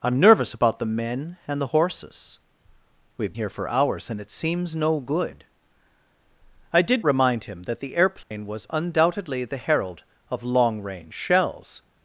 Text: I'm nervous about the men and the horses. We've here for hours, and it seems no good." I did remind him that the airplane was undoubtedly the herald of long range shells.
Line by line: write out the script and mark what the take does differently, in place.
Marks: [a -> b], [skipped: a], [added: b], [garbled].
I'm nervous about the men and the horses. We've here for hours, and it seems no good." I did remind him that the airplane was undoubtedly the herald of long range shells.